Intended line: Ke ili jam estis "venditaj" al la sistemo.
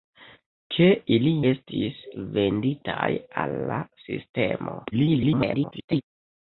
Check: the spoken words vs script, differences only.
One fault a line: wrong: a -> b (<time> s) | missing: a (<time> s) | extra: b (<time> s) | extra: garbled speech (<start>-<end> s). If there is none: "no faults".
missing: jam (1.3 s)
extra: garbled speech (4.9-6.0 s)